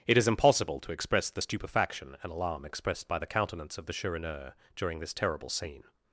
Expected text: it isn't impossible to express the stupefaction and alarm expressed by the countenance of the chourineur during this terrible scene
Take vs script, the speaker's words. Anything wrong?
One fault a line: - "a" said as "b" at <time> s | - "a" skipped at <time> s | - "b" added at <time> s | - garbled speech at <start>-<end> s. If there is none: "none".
- "isn't" said as "is" at 0.2 s